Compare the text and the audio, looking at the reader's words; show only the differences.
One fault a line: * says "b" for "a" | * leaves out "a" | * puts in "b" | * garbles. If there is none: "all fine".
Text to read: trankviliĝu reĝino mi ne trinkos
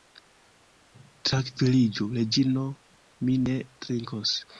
all fine